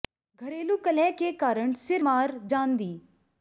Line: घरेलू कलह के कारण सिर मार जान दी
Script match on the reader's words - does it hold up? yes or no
yes